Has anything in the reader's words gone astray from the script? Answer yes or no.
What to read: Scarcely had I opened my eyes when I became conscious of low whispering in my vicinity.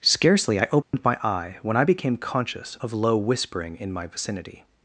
yes